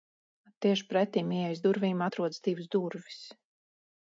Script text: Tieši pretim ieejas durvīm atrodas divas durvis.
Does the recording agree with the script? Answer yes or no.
yes